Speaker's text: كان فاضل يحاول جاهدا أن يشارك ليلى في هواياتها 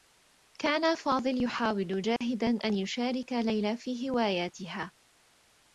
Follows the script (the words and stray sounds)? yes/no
no